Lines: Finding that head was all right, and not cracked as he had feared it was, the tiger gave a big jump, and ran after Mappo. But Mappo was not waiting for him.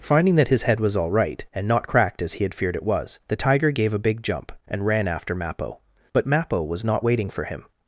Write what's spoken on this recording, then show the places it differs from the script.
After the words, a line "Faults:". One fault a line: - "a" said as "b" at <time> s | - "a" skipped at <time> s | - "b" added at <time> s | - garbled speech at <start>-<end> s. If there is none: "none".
Finding that his head was all right, and not cracked as he had feared it was, the tiger gave a big jump, and ran after Mappo. But Mappo was not waiting for him.
Faults:
- "his" added at 0.5 s